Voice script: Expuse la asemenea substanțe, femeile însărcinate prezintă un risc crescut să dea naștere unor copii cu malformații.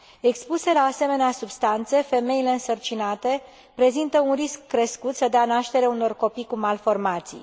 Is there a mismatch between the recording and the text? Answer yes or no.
no